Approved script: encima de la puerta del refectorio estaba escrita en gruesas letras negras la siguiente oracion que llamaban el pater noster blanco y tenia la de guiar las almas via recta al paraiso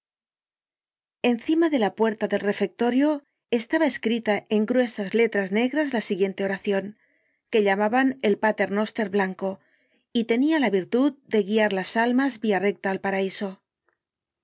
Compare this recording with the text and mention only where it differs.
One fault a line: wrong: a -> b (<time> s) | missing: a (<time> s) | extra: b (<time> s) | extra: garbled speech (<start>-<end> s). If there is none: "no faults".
extra: virtud (10.7 s)